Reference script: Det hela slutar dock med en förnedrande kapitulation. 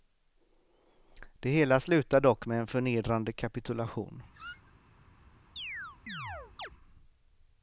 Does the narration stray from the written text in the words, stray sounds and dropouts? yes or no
yes